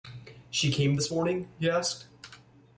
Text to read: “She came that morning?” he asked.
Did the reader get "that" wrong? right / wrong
wrong